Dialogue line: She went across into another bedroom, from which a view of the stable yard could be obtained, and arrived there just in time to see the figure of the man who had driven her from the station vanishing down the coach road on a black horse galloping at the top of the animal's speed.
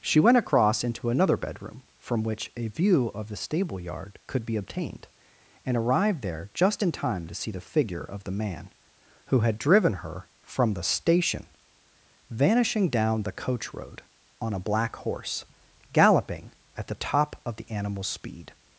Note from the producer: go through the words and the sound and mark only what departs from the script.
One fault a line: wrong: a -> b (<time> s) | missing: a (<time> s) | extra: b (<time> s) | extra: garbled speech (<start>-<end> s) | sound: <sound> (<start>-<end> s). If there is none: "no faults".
no faults